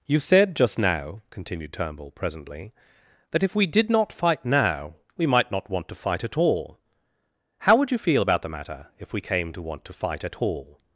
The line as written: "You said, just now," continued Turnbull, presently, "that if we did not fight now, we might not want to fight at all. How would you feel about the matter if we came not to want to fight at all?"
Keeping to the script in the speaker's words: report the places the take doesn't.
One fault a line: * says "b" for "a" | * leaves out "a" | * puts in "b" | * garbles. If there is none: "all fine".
* leaves out "not"